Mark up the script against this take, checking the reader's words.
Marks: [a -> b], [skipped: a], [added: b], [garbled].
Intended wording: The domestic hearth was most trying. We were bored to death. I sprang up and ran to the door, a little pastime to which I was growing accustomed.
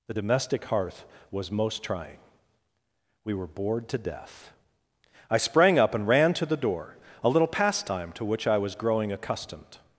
The domestic hearth was most trying. We were bored to death. I sprang up and ran to the door, a little pastime to which I was growing accustomed.